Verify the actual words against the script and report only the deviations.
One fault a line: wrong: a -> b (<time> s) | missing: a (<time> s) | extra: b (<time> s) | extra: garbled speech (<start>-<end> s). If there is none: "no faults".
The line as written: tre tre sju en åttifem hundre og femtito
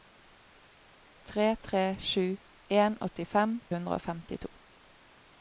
no faults